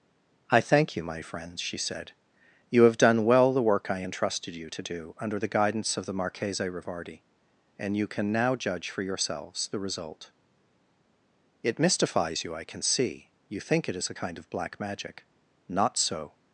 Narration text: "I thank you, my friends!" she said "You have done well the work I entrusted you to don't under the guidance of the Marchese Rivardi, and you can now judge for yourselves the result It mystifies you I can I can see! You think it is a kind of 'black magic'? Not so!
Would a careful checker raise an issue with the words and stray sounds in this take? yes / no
yes